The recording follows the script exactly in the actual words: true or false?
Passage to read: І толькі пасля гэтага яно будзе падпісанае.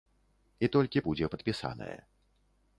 false